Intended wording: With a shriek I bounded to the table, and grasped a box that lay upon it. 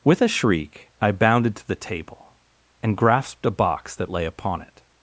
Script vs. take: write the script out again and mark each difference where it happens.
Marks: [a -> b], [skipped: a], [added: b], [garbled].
With a shriek I bounded to the table, and grasped a box that lay upon it.